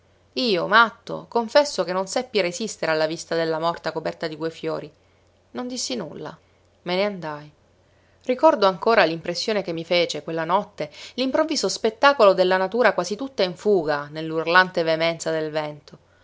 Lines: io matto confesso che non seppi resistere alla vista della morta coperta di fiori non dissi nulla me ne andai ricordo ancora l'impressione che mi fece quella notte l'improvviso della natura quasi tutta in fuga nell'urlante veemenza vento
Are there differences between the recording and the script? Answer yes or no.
yes